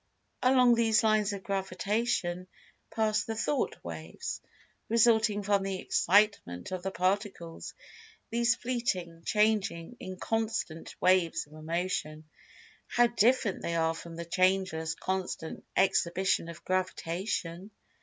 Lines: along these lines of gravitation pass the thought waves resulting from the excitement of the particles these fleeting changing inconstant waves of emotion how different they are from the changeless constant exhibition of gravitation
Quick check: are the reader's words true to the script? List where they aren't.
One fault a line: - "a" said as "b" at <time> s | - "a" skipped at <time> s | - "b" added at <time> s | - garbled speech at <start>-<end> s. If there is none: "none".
none